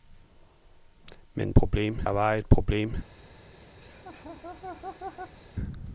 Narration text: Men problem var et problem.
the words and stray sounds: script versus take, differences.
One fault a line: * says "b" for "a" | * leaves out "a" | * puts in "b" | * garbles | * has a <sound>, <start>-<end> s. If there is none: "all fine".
* has a laugh, 3.8-5.4 s